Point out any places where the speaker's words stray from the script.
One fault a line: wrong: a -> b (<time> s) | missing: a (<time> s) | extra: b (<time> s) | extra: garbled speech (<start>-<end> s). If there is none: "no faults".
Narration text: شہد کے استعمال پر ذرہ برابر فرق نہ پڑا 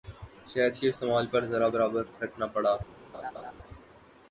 no faults